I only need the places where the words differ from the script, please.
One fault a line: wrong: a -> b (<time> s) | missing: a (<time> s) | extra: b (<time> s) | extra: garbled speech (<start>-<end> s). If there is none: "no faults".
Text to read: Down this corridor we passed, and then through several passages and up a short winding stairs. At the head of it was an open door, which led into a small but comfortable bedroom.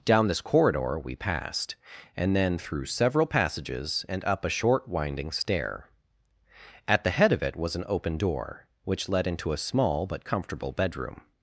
wrong: stairs -> stair (5.3 s)